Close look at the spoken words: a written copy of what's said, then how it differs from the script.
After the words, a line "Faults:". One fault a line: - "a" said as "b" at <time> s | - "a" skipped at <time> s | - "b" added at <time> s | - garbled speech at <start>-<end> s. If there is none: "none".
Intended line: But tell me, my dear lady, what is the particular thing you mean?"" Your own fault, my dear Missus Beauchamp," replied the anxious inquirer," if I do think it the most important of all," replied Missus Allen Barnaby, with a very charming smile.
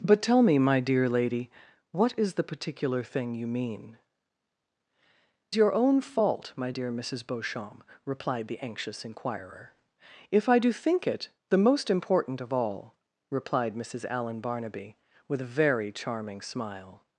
But tell me, my dear lady, what is the particular thing you mean?"" Your own fault, my dear Missus Beauchamp," replied the anxious inquirer," if I do think it the most important of all," replied Missus Allen Barnaby, with a very charming smile.
Faults:
none